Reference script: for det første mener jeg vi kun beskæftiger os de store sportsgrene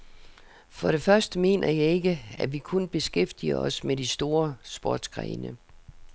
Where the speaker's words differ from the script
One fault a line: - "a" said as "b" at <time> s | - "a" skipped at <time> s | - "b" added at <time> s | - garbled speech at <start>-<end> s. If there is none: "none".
- "ikke at" added at 1.9 s
- "med" added at 3.8 s